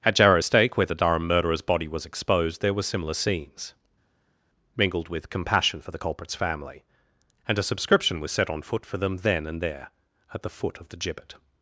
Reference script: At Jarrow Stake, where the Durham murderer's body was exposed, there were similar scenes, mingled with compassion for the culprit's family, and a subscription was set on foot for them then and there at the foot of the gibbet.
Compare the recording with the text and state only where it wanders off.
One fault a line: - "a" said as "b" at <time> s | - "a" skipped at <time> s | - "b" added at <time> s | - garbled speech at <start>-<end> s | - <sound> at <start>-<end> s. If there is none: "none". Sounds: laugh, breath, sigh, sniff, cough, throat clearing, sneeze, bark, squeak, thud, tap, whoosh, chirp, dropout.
none